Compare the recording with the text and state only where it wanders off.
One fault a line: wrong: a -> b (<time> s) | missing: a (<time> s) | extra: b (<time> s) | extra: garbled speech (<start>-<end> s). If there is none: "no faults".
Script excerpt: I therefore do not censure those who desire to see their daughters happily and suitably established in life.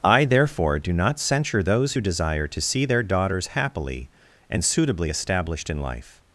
no faults